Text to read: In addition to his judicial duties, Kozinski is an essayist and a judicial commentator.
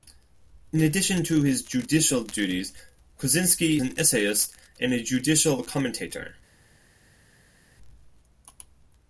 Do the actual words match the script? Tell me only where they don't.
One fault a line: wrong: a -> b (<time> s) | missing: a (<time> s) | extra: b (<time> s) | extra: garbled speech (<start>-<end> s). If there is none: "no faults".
missing: is (3.8 s)